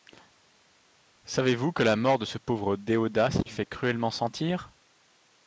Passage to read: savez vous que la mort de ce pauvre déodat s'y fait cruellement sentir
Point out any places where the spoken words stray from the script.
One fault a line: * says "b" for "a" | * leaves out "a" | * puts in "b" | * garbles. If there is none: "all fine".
all fine